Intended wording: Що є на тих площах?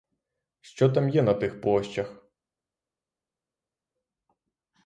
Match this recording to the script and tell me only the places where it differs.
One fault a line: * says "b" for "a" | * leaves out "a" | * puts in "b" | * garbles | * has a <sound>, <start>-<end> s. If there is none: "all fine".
* puts in "там"